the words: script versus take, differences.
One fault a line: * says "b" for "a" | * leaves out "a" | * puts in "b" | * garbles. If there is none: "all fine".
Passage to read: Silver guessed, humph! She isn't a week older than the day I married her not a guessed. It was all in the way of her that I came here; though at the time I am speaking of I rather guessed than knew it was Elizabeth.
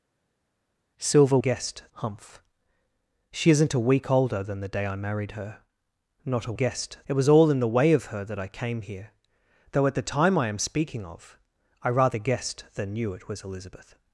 all fine